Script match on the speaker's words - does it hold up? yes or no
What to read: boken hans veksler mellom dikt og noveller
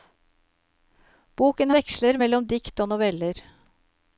no